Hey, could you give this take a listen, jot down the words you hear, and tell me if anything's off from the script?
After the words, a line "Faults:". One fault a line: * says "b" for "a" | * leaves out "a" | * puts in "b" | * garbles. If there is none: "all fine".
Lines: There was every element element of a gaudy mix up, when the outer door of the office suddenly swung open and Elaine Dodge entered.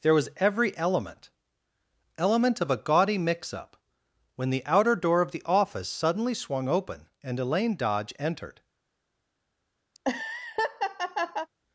There was every element element of a gaudy mix up, when the outer door of the office suddenly swung open and Elaine Dodge entered.
Faults:
all fine